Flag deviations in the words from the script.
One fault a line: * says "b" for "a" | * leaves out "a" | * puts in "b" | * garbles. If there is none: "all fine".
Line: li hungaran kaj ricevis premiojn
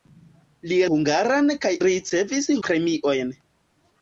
all fine